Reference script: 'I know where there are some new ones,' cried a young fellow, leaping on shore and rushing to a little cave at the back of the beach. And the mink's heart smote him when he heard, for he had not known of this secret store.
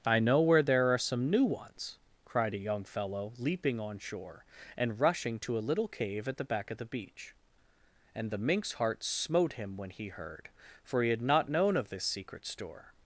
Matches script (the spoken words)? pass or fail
pass